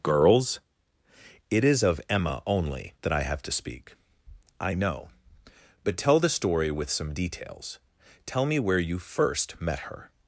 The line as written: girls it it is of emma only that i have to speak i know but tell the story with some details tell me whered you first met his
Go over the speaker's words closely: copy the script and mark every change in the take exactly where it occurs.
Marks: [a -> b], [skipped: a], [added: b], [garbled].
girls it [skipped: it] is of emma only that i have to speak i know but tell the story with some details tell me [whered -> where] you first met [his -> her]